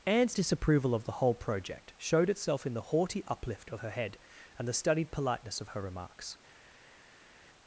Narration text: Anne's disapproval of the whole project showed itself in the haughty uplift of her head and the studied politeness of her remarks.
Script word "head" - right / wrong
right